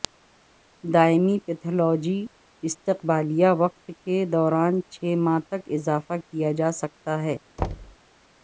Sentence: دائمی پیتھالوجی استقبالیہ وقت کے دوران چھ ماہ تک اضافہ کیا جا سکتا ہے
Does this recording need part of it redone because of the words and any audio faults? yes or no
yes